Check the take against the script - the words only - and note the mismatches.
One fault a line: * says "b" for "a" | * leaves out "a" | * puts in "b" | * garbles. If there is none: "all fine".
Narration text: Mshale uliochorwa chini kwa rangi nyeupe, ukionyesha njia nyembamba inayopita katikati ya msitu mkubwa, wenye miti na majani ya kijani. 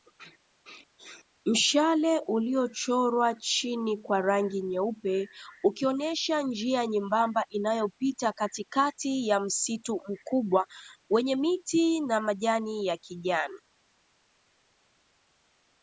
all fine